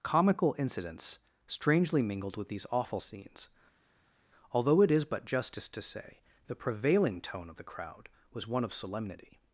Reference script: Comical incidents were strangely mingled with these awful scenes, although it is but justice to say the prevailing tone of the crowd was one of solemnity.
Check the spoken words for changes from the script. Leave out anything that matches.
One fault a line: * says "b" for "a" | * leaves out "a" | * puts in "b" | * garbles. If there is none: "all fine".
* leaves out "were"